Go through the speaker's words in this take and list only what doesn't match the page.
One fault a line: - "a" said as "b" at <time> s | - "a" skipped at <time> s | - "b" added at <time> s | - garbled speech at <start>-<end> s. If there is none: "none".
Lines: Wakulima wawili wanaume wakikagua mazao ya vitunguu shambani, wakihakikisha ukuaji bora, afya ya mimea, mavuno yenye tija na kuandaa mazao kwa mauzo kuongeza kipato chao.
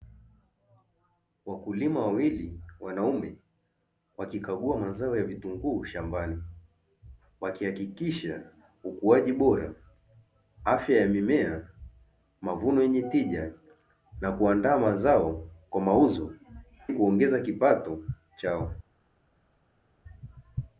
none